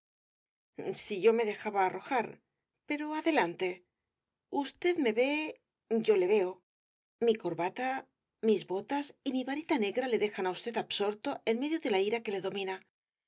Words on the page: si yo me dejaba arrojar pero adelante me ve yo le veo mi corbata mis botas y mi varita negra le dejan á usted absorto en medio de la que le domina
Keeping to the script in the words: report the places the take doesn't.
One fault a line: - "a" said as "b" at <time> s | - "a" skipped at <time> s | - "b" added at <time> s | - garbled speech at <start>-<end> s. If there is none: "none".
- "usted" added at 4.5 s
- "ira" added at 12.1 s